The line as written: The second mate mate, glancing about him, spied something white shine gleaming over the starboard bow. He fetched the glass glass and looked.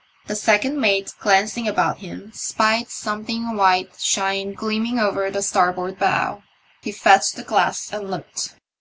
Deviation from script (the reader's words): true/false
true